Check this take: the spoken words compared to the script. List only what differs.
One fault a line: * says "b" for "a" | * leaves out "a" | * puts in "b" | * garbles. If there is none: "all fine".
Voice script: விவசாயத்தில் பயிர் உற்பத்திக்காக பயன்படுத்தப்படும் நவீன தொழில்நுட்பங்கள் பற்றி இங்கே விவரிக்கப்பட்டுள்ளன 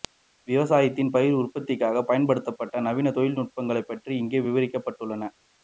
all fine